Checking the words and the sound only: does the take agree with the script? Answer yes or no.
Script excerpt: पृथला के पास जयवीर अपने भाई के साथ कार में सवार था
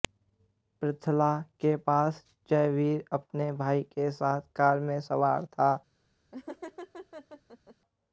no